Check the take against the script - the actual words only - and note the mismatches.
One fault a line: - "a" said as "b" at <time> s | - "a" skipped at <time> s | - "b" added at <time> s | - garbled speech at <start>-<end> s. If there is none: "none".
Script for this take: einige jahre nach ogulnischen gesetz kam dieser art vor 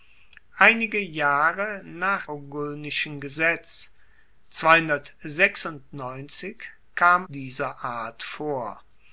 none